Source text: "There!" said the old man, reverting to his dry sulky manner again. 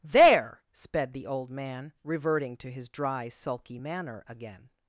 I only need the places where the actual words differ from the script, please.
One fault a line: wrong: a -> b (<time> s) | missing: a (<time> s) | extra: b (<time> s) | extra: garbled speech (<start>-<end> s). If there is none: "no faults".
wrong: said -> sped (0.7 s)